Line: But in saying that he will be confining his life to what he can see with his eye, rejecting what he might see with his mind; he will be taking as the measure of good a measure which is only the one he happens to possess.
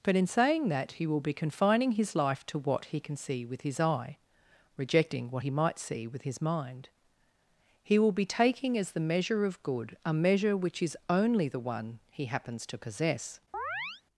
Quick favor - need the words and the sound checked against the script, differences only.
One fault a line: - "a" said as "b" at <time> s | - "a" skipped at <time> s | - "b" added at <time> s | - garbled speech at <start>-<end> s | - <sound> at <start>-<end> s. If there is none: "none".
- chirp at 13.5-14.0 s